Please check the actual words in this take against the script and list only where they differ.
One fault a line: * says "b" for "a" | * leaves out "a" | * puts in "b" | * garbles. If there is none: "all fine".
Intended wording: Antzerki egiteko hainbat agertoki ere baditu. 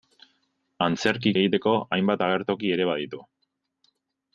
all fine